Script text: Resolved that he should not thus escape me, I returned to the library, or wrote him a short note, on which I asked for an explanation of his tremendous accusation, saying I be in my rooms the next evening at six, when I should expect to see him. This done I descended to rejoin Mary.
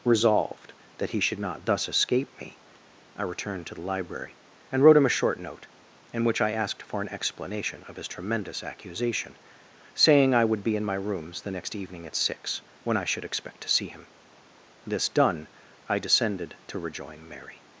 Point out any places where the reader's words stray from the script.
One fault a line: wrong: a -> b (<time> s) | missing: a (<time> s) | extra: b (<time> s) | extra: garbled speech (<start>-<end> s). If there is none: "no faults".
wrong: or -> and (4.7 s)
wrong: on -> in (6.1 s)
extra: would (10.4 s)